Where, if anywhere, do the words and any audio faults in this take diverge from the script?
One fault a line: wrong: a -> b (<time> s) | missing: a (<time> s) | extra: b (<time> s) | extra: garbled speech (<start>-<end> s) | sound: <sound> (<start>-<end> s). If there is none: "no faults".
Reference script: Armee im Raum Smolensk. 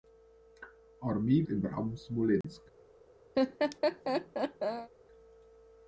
sound: dropout (2.4-2.4 s)
sound: laugh (3.3-4.9 s)